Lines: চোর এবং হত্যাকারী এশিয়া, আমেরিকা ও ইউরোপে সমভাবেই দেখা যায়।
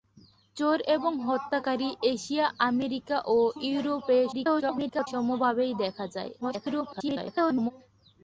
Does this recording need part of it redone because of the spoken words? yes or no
yes